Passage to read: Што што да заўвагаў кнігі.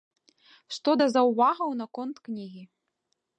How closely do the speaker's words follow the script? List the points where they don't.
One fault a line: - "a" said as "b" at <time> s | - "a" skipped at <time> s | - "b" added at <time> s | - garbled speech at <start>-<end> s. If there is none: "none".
- "што" skipped at 0.9 s
- "наконт" added at 1.9 s